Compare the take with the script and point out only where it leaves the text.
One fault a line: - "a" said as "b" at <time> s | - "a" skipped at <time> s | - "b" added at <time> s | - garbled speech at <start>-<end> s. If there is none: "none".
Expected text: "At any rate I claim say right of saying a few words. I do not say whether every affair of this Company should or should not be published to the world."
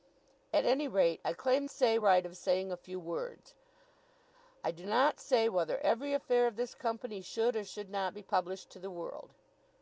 none